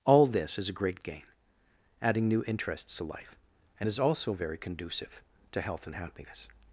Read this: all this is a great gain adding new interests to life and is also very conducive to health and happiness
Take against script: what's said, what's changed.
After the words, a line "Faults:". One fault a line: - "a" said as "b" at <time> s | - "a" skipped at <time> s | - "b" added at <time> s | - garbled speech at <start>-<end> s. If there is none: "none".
all this is a great gain adding new interests to life and is also very conducive to health and happiness
Faults:
none